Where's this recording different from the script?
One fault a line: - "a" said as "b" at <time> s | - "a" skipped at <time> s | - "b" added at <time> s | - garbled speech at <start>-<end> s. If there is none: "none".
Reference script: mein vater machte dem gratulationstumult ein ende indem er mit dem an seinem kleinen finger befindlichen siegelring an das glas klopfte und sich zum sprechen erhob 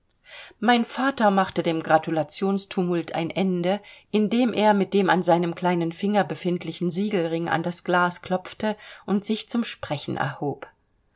none